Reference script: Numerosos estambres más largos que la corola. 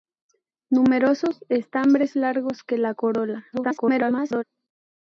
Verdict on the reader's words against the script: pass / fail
fail